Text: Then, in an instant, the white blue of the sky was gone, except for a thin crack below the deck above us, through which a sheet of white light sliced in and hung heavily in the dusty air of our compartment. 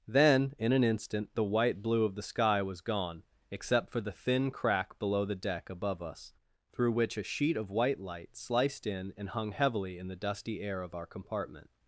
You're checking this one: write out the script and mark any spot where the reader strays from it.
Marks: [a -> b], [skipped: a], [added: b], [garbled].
Then, in an instant, the white blue of the sky was gone, except for [a -> the] thin crack below the deck above us, through which a sheet of white light sliced in and hung heavily in the dusty air of our compartment.